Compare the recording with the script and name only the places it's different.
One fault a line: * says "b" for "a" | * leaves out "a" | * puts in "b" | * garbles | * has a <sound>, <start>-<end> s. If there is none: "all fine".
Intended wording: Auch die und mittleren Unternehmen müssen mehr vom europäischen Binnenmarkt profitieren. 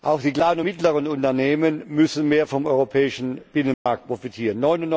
* puts in "kleinen"
* has a dropout, 3.7-3.9 s